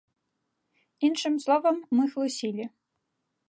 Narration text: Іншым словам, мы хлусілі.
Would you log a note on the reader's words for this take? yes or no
no